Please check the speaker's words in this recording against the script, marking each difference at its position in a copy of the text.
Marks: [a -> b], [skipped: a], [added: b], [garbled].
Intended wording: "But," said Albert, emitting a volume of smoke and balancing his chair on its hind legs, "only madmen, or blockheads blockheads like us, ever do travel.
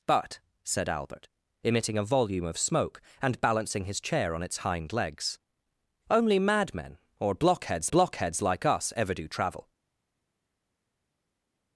"But," said Albert, emitting a volume of smoke and balancing his chair on its hind legs, "only madmen, or blockheads blockheads like us, ever do travel.